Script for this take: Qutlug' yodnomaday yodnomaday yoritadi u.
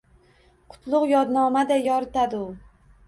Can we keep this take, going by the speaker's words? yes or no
no